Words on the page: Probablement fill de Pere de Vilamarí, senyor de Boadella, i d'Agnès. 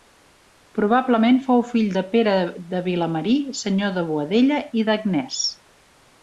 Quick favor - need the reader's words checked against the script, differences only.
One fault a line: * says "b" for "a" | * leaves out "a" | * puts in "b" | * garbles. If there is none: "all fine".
* puts in "fou"